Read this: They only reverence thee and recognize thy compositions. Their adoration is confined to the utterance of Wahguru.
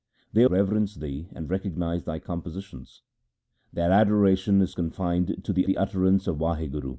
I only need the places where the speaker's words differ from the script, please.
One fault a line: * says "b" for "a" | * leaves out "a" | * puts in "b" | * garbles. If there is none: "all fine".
* leaves out "only"
* puts in "the"